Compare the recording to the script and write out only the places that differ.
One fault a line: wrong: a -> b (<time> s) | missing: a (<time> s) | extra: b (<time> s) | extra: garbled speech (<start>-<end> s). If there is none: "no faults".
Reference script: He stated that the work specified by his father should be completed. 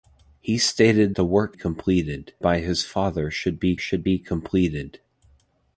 missing: that (1.1 s)
wrong: specified -> completed (1.5 s)
extra: should be (3.8 s)